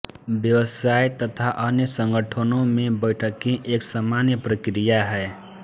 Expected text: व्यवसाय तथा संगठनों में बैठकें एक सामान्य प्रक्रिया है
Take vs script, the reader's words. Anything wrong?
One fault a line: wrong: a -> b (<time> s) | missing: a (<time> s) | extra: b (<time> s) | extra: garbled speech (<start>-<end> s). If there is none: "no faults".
extra: अन्य (1.6 s)